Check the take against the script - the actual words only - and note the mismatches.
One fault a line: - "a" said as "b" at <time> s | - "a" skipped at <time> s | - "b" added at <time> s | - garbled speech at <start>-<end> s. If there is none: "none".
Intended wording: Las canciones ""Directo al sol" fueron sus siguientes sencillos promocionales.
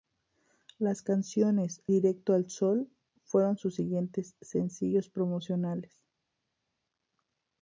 none